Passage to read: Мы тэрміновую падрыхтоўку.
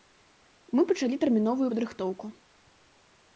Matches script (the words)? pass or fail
fail